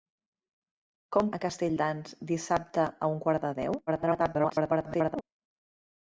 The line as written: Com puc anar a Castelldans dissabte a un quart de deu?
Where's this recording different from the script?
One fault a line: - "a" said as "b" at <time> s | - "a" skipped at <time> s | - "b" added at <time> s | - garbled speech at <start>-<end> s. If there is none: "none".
- "puc anar" skipped at 1.3 s
- garbled speech at 3.9-5.2 s